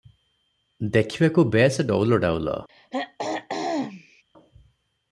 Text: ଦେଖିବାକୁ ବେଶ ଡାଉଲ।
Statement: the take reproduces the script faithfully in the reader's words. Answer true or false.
false